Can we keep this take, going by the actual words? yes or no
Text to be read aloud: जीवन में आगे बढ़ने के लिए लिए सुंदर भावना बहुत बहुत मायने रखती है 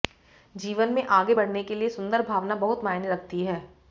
no